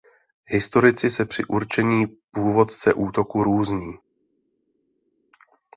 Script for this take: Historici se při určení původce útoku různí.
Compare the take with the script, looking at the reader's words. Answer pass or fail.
pass